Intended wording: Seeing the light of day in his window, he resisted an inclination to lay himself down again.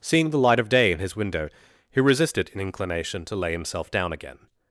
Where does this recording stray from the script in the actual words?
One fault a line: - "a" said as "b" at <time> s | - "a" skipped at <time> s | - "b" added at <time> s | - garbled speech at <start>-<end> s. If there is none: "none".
none